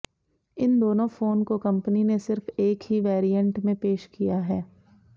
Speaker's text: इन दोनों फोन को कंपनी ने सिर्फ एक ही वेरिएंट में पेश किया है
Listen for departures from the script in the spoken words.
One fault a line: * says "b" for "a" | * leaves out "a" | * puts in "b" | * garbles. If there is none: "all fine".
all fine